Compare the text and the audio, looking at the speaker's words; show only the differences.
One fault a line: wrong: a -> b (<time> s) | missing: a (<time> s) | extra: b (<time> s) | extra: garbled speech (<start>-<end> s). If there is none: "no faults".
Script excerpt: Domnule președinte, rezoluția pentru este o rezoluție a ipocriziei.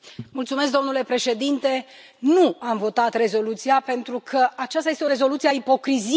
extra: nu am votat (2.2 s)
extra: că aceasta (4.2 s)